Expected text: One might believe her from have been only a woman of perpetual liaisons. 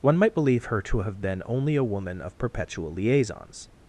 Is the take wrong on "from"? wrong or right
wrong